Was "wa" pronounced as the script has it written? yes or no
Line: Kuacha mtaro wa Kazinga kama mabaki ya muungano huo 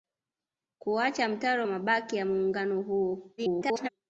no